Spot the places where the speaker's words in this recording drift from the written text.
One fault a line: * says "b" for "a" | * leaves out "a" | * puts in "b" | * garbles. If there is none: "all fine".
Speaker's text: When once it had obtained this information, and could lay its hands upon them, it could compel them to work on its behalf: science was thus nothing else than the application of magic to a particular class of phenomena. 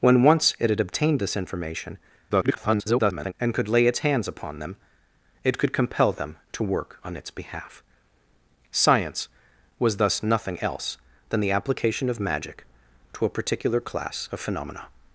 * garbles